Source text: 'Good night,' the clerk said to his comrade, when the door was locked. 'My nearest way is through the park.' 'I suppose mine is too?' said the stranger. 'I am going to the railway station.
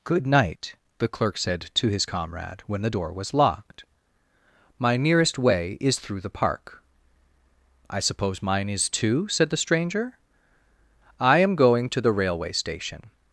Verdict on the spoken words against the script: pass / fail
pass